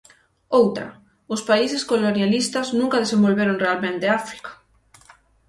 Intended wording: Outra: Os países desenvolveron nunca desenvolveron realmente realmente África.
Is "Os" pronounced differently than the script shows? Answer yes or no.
no